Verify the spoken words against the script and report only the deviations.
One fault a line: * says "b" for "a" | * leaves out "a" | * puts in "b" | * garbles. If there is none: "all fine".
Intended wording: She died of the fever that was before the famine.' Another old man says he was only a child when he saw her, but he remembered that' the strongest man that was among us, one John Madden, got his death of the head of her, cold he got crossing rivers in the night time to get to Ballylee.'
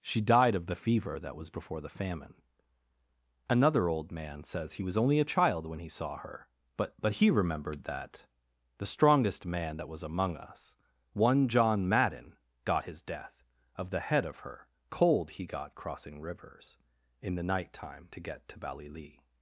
* puts in "but"